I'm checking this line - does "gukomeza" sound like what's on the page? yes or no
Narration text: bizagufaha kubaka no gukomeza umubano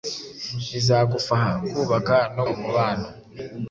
no